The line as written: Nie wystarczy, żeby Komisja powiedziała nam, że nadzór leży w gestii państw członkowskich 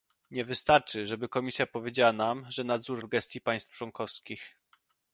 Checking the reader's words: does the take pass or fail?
fail